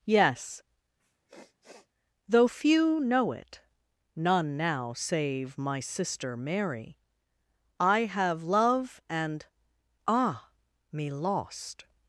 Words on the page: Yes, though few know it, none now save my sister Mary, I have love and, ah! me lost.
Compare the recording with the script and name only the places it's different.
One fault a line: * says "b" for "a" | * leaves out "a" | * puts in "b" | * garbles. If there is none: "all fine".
all fine